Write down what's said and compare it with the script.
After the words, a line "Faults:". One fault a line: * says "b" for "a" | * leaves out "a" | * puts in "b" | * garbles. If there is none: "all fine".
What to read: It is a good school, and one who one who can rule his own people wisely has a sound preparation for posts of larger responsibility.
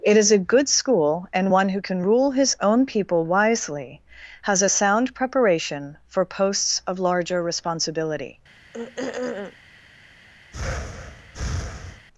It is a good school, and one who can rule his own people wisely has a sound preparation for posts of larger responsibility.
Faults:
* leaves out "one who"